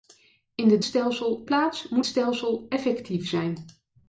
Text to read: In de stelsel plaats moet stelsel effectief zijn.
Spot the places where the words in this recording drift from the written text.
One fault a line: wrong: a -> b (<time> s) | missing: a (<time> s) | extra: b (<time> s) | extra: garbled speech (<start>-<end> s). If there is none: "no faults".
no faults